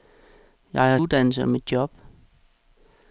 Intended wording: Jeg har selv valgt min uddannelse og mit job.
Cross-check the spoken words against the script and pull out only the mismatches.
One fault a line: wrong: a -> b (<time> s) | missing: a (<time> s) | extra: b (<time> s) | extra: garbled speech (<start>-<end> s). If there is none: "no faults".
missing: selv valgt min (1.0 s)